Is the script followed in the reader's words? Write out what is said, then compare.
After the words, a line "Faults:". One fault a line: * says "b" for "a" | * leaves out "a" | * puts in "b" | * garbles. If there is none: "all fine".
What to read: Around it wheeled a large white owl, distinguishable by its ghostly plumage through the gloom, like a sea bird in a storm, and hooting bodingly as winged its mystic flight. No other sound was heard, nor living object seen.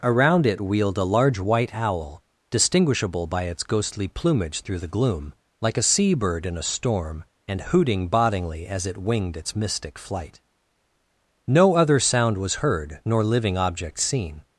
Around it wheeled a large white owl, distinguishable by its ghostly plumage through the gloom, like a sea bird in a storm, and hooting bodingly as it winged its mystic flight. No other sound was heard, nor living object seen.
Faults:
* puts in "it"